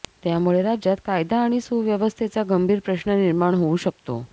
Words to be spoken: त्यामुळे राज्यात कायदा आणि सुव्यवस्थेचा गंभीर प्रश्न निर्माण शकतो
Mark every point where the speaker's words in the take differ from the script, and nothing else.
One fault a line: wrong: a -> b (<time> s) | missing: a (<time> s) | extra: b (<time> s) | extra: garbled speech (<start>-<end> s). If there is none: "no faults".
extra: होऊ (3.5 s)